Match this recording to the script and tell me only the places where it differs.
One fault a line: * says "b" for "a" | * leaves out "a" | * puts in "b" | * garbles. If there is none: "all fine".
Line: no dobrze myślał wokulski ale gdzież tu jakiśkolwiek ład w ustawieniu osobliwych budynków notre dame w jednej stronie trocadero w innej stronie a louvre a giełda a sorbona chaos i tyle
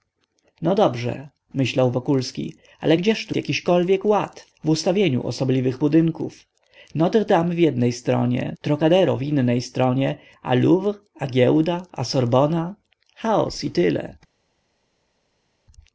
all fine